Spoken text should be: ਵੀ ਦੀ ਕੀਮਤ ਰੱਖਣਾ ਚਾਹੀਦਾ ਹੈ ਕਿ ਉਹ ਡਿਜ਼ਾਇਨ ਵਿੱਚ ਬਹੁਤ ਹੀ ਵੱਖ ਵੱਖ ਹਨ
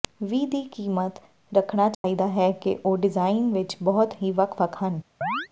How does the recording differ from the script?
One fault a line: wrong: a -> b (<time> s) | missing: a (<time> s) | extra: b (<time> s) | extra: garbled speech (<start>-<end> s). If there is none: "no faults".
no faults